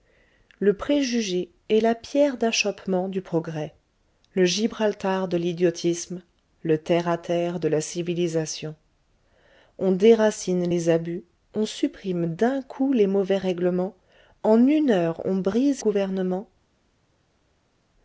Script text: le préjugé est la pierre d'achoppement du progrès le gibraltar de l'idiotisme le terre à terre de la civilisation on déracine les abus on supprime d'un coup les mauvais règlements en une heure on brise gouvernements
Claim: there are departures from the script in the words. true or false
false